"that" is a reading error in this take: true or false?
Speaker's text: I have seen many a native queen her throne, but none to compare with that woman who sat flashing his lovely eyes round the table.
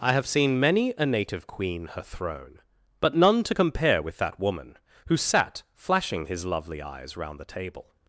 false